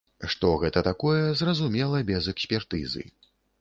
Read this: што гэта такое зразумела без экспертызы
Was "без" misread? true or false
false